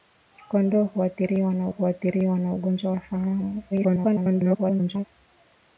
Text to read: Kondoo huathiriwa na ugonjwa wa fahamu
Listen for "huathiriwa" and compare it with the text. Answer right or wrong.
right